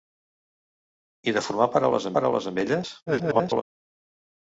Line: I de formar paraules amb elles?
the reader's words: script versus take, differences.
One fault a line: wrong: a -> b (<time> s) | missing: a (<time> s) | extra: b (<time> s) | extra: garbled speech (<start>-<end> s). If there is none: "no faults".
extra: paraules (2.2 s)
extra: garbled speech (3.1-3.6 s)